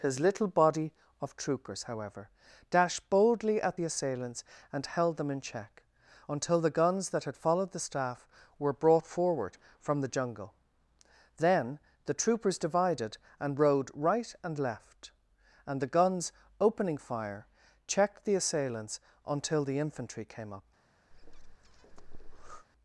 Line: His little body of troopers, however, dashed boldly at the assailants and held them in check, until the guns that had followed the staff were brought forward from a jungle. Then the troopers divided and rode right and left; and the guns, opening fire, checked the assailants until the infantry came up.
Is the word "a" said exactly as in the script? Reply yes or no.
no